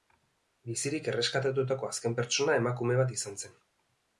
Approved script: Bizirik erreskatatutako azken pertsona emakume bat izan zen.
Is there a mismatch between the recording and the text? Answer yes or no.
no